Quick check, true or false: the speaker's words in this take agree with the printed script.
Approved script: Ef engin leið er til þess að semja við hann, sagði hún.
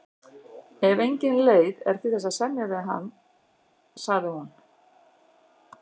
true